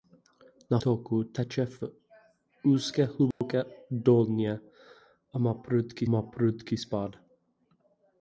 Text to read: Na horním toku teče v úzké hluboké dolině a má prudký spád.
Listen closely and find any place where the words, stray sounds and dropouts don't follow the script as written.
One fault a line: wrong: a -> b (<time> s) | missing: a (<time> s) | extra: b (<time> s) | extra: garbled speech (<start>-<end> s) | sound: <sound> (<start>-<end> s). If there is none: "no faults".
missing: horním (0.8 s)
sound: dropout (3.3-3.4 s)
extra: má prudký (6.1 s)